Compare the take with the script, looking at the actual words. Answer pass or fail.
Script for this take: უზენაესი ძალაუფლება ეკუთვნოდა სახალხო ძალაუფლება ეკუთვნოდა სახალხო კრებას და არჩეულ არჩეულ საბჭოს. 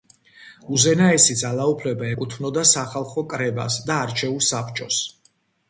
fail